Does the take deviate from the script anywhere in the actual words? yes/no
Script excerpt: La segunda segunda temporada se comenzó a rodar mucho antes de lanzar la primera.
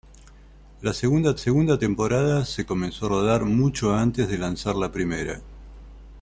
no